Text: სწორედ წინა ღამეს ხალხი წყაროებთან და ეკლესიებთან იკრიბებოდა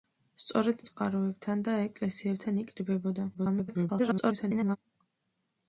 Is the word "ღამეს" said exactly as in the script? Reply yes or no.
no